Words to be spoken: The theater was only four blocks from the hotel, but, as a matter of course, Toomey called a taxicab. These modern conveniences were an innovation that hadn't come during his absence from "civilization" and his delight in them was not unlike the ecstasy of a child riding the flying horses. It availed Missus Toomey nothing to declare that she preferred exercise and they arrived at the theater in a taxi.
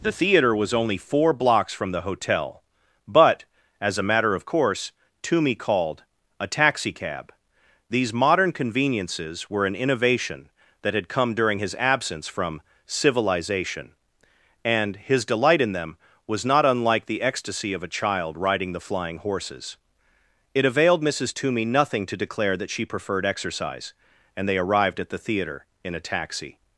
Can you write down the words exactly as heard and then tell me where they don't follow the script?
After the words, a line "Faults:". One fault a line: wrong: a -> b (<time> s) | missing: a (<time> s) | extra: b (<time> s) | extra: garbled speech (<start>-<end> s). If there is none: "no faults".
The theater was only four blocks from the hotel, but, as a matter of course, Toomey called a taxicab. These modern conveniences were an innovation that had come during his absence from "civilization" and his delight in them was not unlike the ecstasy of a child riding the flying horses. It availed Missus Toomey nothing to declare that she preferred exercise and they arrived at the theater in a taxi.
Faults:
wrong: hadn't -> had (10.9 s)